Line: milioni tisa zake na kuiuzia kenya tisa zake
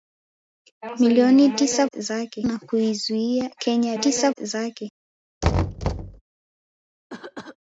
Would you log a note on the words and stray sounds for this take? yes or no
yes